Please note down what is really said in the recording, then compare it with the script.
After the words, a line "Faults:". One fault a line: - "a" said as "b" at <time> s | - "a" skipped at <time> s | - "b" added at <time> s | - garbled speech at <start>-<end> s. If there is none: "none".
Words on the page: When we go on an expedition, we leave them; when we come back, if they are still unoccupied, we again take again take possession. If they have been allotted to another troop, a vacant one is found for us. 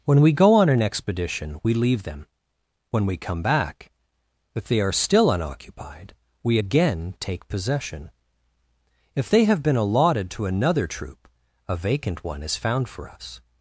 When we go on an expedition, we leave them; when we come back, if they are still unoccupied, we again take possession. If they have been allotted to another troop, a vacant one is found for us.
Faults:
- "again take" skipped at 7.5 s